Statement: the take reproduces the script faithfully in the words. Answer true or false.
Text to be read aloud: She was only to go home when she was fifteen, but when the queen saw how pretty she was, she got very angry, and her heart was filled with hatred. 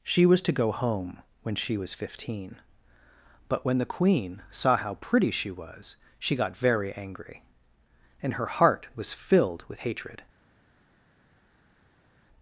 false